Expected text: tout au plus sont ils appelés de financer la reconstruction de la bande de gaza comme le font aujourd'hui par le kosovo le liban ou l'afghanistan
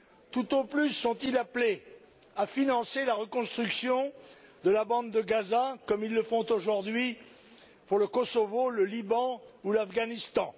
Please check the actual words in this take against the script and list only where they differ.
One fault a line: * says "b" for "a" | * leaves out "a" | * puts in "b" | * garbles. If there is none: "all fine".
* says "à" for "de"
* puts in "ils"
* says "pour" for "par"